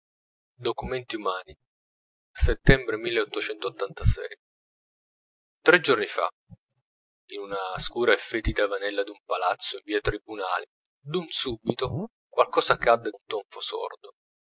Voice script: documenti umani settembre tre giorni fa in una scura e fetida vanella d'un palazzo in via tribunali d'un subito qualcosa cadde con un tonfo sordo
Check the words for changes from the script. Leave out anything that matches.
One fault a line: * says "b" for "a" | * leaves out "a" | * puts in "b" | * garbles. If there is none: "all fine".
* leaves out "con"